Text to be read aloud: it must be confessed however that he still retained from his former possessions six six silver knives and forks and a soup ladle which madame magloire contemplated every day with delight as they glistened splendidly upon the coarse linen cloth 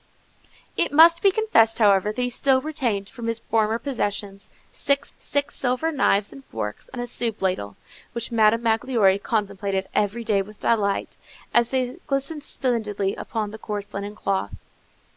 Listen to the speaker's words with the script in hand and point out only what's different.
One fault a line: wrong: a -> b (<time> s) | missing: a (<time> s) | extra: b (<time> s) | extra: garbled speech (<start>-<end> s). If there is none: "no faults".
no faults